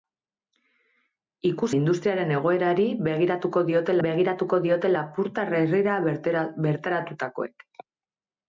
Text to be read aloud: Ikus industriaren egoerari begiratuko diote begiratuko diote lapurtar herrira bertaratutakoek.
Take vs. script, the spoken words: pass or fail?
pass